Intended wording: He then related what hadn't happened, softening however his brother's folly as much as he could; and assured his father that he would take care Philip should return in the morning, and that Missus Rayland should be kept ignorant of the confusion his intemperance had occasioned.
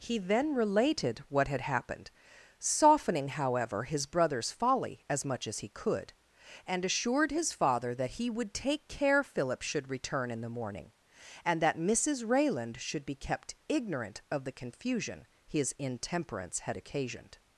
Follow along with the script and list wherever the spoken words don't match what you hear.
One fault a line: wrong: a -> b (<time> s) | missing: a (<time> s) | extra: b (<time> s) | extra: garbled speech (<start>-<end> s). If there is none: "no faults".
wrong: hadn't -> had (1.5 s)